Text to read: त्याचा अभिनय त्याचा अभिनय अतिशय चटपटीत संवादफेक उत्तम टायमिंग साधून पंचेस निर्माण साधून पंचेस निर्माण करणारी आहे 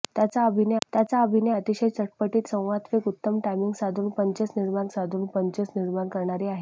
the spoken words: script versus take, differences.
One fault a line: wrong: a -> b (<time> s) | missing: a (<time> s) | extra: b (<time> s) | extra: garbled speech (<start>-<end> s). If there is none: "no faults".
no faults